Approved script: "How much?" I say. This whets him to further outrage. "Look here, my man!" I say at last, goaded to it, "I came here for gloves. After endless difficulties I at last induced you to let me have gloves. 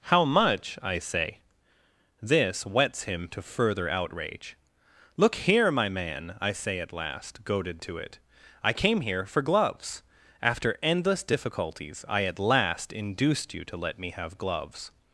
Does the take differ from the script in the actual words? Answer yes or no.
no